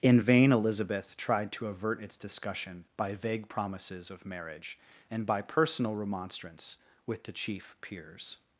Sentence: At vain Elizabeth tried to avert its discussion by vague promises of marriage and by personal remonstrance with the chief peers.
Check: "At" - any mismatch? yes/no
yes